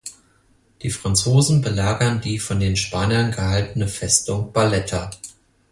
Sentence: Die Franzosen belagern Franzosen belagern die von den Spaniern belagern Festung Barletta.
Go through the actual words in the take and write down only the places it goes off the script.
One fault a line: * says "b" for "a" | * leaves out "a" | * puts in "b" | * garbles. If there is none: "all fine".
* leaves out "Franzosen belagern"
* says "gehaltene" for "belagern"